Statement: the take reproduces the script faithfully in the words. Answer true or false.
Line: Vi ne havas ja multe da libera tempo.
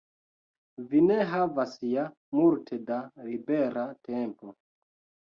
true